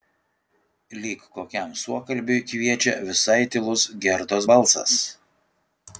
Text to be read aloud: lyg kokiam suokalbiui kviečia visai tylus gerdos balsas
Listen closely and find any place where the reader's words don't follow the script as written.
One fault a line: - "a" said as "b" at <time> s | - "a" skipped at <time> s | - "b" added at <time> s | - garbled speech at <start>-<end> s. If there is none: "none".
none